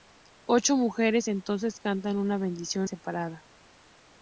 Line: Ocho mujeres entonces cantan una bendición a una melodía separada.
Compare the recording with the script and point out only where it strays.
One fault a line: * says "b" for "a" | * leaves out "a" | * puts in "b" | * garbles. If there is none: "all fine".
* leaves out "a una melodía"